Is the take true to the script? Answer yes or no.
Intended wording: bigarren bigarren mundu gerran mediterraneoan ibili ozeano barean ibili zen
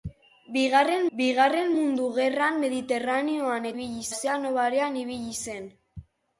yes